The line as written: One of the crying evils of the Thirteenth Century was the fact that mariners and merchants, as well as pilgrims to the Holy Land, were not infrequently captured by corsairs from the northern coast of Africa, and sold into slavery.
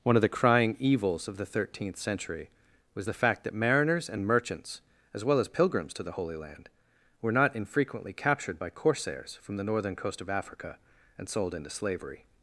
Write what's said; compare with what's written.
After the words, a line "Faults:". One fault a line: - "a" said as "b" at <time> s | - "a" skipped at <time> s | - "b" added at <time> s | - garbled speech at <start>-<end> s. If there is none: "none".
One of the crying evils of the Thirteenth Century was the fact that mariners and merchants, as well as pilgrims to the Holy Land, were not infrequently captured by corsairs from the northern coast of Africa, and sold into slavery.
Faults:
none